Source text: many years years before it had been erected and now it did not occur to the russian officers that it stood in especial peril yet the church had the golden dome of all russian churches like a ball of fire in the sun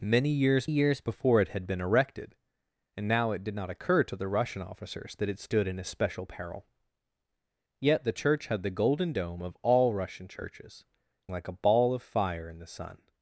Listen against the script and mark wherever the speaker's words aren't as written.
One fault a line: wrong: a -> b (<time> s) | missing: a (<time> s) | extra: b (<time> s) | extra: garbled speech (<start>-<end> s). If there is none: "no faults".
no faults